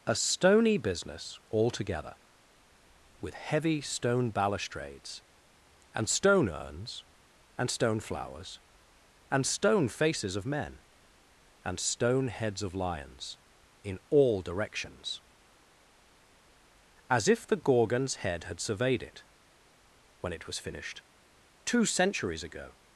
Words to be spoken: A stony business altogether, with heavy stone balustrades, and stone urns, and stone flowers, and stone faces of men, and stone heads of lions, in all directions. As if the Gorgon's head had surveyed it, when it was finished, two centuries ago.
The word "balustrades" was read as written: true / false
true